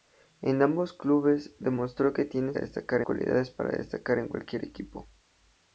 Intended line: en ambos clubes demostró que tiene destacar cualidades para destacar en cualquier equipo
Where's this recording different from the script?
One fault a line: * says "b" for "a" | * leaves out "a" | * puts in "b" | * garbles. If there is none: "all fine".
all fine